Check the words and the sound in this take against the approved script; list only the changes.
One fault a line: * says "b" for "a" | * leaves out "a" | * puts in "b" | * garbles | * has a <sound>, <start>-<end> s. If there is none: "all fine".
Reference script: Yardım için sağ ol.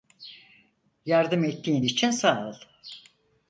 * puts in "ettiğin"